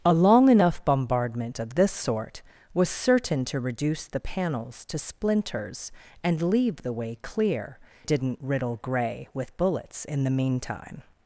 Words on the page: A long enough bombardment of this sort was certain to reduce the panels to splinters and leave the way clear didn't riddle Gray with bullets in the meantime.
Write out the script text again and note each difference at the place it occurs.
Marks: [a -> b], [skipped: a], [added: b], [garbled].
A long enough bombardment of this sort was certain to reduce the panels to splinters and leave the way clear didn't riddle Gray with bullets in the meantime.